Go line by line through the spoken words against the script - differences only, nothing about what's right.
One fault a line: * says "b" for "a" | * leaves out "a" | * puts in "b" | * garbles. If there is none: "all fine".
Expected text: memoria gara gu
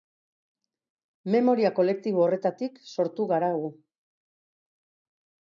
* puts in "kolektibo horretatik sortu"